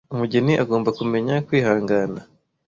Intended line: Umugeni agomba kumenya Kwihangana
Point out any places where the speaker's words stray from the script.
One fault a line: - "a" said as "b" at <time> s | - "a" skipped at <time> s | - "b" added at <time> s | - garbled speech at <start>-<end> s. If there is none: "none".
none